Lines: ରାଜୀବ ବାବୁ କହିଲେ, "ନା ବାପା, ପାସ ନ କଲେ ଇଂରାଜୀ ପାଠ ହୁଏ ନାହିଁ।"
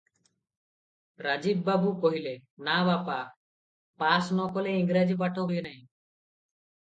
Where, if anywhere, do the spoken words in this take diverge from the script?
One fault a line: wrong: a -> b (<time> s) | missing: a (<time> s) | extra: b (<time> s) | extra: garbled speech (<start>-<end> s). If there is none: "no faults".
no faults